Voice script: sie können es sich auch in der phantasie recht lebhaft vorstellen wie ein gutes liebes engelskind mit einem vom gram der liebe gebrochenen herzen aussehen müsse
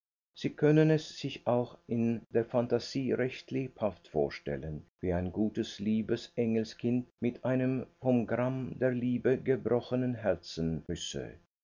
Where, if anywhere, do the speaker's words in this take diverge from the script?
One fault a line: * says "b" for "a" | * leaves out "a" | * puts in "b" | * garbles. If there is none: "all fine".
* leaves out "aussehen"